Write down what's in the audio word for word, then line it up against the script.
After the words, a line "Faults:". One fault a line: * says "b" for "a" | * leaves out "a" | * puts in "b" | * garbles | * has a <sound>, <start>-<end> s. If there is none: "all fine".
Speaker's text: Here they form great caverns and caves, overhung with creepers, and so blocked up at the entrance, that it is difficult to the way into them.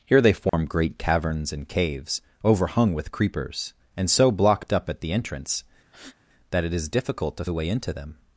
Here they form great caverns and caves, overhung with creepers, and so blocked up at the entrance, that it is difficult to the way into them.
Faults:
* has a dropout, 0.5-0.5 s
* has a breath, 5.9-6.2 s